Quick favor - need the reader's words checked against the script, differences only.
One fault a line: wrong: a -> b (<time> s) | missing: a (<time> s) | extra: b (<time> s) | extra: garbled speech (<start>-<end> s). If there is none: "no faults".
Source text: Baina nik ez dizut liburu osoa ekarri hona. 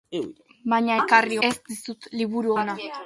wrong: nik -> ekarri (1.0 s)
missing: osoa ekarri (2.5 s)